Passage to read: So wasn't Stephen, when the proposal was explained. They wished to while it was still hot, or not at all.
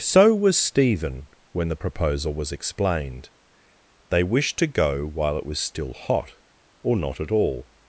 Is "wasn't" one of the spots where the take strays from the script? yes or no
yes